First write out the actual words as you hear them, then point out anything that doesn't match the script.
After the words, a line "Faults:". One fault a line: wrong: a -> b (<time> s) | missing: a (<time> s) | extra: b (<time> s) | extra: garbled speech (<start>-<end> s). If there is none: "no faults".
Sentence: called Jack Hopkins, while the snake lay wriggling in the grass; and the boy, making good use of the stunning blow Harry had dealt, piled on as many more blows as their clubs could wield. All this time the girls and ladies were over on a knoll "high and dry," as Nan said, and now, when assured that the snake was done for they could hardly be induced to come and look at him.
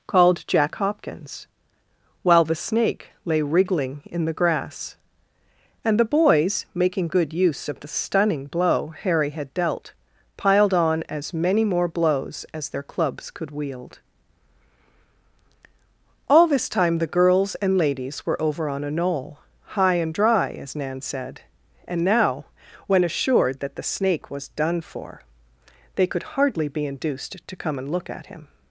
called Jack Hopkins, while the snake lay wriggling in the grass; and the boys, making good use of the stunning blow Harry had dealt, piled on as many more blows as their clubs could wield. All this time the girls and ladies were over on a knoll "high and dry," as Nan said, and now, when assured that the snake was done for they could hardly be induced to come and look at him.
Faults:
wrong: boy -> boys (6.0 s)